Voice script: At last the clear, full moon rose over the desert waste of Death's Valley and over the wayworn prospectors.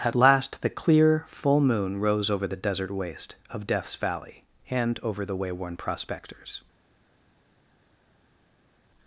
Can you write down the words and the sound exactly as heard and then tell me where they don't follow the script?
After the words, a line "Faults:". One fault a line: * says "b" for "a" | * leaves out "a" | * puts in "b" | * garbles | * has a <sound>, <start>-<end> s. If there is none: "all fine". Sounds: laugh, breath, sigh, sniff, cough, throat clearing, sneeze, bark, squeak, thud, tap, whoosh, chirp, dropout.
At last the clear, full moon rose over the desert waste of Death's Valley and over the wayworn prospectors.
Faults:
all fine